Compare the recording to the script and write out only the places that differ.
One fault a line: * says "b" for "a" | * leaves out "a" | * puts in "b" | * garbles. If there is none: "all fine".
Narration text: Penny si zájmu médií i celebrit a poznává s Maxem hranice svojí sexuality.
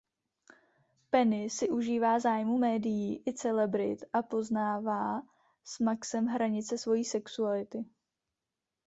* puts in "užívá"